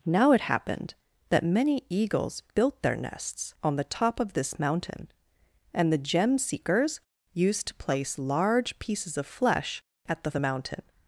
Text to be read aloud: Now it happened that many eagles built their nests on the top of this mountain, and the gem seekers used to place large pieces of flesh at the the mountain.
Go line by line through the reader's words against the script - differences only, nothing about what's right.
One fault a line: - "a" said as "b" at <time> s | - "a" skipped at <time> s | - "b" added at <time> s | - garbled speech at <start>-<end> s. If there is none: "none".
none